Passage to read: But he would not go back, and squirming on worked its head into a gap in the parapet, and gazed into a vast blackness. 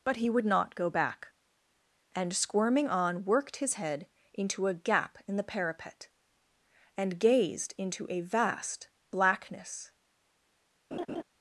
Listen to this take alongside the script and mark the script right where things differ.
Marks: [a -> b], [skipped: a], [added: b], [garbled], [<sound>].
But he would not go back, and squirming on worked [its -> his] head into a gap in the parapet, and gazed into a vast blackness. [laugh]